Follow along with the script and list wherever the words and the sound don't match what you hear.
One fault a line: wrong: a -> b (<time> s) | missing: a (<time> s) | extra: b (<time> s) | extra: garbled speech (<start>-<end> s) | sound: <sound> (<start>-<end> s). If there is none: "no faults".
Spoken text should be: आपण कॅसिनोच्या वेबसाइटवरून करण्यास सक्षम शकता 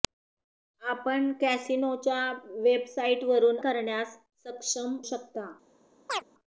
sound: chirp (6.1-6.2 s)